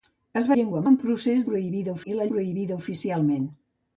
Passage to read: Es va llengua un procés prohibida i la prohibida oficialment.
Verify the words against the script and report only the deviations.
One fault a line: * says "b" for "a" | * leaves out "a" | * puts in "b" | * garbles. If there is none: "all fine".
all fine